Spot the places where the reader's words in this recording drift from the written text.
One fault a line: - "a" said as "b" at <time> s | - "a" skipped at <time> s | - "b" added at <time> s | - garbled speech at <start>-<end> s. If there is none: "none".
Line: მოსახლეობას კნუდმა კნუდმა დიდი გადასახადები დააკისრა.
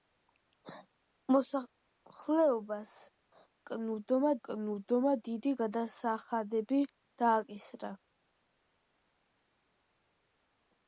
none